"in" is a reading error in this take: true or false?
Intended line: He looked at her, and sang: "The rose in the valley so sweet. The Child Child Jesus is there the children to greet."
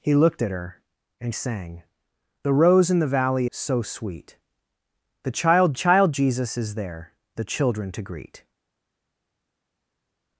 false